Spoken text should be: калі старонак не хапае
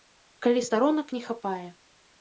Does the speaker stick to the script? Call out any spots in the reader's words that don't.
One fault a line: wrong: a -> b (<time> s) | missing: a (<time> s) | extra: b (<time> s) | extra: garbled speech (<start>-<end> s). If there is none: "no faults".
no faults